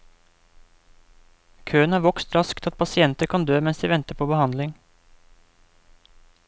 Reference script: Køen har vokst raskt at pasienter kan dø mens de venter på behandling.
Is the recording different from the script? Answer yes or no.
no